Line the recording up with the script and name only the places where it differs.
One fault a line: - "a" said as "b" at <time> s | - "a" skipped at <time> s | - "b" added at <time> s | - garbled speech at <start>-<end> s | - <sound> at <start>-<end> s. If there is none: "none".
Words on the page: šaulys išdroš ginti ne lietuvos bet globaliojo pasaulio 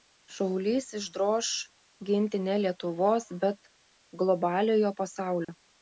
- dropout at 5.4-5.5 s